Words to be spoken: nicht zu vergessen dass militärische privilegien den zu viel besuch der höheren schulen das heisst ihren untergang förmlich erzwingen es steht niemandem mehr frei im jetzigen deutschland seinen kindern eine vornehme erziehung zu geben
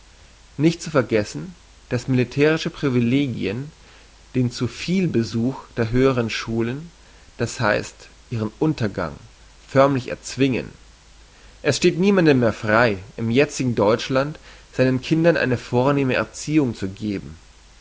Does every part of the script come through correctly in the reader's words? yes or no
yes